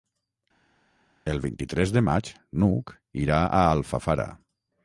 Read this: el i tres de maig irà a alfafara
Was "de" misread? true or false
false